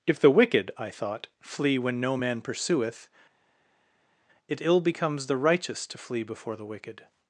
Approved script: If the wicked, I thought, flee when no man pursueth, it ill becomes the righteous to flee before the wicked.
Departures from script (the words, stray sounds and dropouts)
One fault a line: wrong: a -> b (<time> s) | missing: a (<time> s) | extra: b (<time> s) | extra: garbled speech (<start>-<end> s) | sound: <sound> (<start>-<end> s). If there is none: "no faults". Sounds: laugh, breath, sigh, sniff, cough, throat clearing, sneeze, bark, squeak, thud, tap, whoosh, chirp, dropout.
no faults